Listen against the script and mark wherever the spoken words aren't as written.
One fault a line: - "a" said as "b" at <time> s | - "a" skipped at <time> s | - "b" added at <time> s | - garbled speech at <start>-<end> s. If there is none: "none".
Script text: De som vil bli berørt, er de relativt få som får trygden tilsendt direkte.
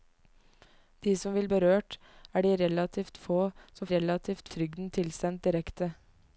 - "bli" skipped at 1.5 s
- "får" said as "relativt" at 3.9 s